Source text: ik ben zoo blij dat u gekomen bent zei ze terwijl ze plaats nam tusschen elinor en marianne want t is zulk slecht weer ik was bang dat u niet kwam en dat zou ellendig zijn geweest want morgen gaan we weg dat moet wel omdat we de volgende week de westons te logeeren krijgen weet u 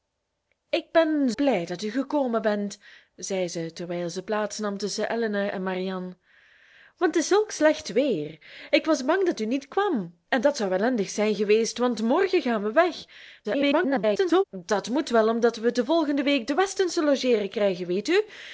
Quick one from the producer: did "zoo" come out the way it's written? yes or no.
no